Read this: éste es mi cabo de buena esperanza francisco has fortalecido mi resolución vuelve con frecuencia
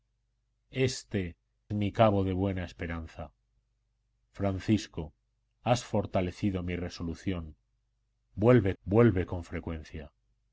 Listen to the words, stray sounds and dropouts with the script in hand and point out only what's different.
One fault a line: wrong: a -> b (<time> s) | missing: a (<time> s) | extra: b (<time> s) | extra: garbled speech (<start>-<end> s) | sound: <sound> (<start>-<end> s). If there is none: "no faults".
missing: es (1.4 s)
extra: vuelve (8.8 s)